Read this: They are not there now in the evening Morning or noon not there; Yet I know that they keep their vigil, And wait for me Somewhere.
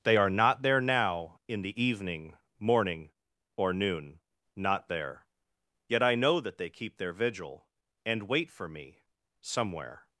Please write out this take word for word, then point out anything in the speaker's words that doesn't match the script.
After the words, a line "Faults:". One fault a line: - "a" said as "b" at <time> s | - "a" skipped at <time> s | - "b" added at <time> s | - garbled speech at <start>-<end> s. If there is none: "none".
They are not there now in the evening Morning or noon not there; Yet I know that they keep their vigil, And wait for me Somewhere.
Faults:
none